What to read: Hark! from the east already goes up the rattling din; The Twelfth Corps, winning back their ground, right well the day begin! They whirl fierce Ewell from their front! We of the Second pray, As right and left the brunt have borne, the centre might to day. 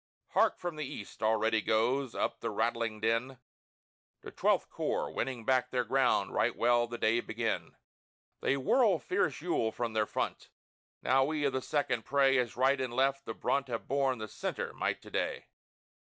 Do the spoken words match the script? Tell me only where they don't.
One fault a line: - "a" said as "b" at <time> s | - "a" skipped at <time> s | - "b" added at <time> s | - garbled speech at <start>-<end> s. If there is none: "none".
- "Now" added at 11.0 s